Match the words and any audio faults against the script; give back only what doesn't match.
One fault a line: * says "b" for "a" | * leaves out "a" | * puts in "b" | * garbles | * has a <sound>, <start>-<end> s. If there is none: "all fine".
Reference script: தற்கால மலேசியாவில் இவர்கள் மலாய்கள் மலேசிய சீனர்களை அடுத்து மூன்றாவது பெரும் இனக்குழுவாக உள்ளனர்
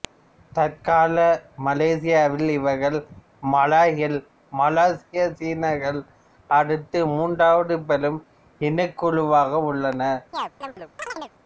* has a chirp, 10.3-11.3 s